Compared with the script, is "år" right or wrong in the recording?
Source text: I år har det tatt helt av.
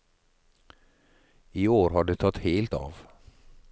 right